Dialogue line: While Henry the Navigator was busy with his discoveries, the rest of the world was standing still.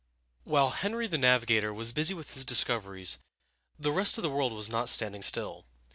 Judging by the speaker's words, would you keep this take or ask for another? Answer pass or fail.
fail